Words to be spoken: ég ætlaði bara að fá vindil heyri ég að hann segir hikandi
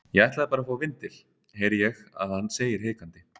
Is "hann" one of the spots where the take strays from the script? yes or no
no